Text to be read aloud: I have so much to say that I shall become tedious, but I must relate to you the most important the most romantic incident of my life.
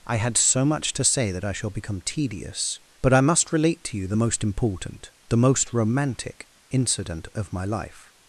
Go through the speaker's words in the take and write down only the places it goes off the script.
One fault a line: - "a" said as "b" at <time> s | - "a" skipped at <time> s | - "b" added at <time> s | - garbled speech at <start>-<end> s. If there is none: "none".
- "have" said as "had" at 0.2 s